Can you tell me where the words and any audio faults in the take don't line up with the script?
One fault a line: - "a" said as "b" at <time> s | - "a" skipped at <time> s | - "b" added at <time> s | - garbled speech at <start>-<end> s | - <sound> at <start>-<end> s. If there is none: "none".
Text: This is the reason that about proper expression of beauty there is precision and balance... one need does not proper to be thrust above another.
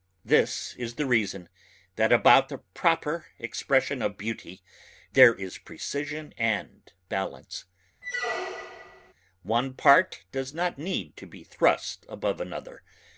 - "the" added at 2.5 s
- squeak at 8.0-9.1 s
- "need" said as "part" at 9.8 s
- "proper" said as "need" at 10.8 s